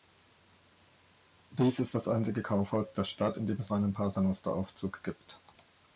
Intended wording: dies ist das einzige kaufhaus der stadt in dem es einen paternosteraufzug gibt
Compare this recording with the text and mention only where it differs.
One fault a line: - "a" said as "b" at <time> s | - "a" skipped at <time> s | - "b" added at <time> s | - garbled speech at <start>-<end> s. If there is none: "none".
none